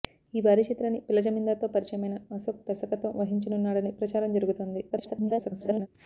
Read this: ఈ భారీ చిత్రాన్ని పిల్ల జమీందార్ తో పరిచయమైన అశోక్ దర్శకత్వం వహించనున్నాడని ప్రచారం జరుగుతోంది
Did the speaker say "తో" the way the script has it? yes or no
yes